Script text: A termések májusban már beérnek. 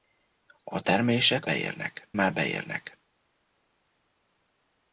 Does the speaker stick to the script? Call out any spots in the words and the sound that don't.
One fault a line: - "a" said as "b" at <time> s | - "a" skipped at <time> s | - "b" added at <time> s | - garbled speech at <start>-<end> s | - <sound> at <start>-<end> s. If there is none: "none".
- "májusban" said as "beérnek" at 1.4 s